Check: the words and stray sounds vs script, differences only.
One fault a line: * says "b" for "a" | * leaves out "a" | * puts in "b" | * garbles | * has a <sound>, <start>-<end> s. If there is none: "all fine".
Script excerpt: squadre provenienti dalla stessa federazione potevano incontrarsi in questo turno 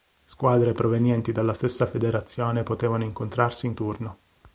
* leaves out "questo"